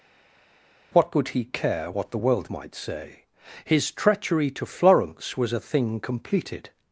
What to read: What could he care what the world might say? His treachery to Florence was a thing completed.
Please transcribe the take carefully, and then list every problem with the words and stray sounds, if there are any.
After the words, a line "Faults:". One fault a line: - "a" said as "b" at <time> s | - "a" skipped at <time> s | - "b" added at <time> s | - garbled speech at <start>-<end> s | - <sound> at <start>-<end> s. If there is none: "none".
What could he care what the world might say? His treachery to Florence was a thing completed.
Faults:
none